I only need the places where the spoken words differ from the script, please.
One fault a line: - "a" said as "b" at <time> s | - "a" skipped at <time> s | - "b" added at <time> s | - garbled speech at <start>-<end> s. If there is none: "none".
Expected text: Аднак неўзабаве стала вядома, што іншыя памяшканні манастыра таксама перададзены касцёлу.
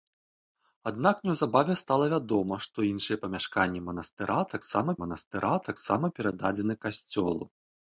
- "манастыра таксама" added at 5.0 s